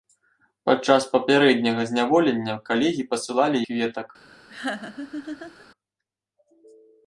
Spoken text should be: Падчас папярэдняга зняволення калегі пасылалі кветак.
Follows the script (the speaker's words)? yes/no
yes